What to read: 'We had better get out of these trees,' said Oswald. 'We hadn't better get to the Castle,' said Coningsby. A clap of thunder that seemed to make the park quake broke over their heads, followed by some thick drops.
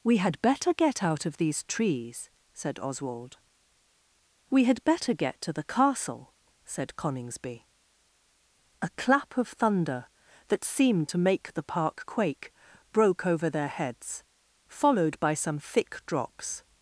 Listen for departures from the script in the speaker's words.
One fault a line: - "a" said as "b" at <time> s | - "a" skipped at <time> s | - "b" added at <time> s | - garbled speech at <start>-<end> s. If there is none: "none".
- "hadn't" said as "had" at 4.7 s